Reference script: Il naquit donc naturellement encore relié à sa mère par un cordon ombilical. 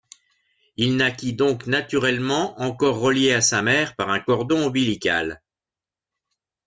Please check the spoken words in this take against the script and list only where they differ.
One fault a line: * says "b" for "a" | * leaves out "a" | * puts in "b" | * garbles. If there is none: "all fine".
all fine